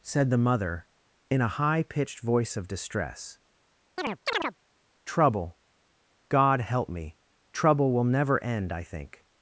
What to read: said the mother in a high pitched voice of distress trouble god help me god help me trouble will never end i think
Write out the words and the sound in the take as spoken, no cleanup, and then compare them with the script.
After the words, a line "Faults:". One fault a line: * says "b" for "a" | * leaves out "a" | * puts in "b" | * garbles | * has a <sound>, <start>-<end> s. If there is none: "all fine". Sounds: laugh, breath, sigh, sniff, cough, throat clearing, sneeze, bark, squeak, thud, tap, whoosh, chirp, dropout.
said the mother in a high pitched voice of distress trouble god help me trouble will never end i think
Faults:
* has a chirp, 4.0-4.6 s
* leaves out "god help me"